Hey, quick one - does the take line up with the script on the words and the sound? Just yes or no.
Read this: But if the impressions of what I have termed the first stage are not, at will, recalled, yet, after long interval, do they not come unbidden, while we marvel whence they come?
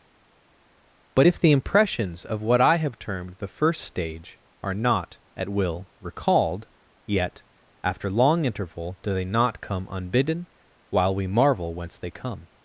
yes